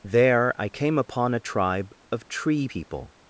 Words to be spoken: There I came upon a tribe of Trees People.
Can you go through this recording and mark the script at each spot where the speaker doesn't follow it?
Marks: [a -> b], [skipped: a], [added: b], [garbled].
There I came upon a tribe of [Trees -> Tree] People.